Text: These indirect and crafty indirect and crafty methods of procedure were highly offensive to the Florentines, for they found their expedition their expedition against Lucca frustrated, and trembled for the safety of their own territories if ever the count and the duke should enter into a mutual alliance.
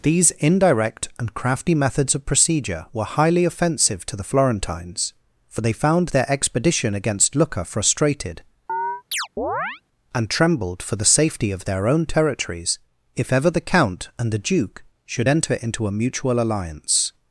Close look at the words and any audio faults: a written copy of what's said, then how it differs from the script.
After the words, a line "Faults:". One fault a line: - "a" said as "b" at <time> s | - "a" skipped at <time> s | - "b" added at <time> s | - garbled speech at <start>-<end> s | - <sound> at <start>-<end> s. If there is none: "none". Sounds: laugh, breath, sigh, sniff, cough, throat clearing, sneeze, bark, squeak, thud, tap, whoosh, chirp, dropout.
These indirect and crafty methods of procedure were highly offensive to the Florentines, for they found their expedition against Lucca frustrated, and trembled for the safety of their own territories if ever the count and the duke should enter into a mutual alliance.
Faults:
- "indirect and crafty" skipped at 1.8 s
- "their expedition" skipped at 6.9 s
- chirp at 8.7-9.8 s